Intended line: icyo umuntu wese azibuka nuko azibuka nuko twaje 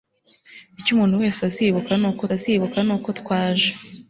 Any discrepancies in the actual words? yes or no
no